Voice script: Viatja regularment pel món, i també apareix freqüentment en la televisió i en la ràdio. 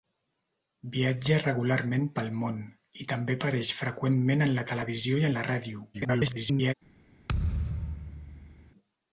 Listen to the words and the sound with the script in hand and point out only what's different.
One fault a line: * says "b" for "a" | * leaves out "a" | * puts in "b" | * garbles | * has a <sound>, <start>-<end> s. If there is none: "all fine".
* garbles
* has a thud, 7.3-8.7 s